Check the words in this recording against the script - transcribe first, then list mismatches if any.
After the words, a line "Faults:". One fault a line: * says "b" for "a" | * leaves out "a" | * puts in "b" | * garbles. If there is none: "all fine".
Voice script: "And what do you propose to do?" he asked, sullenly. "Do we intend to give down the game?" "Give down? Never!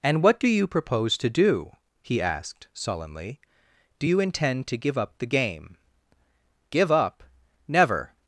"And what do you propose to do?" he asked, sullenly. "Do you intend to give up the game?" "Give up? Never!
Faults:
* says "you" for "we"
* says "up" for "down"
* says "up" for "down"